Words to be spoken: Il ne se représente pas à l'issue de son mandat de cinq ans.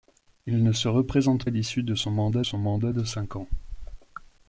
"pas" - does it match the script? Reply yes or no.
no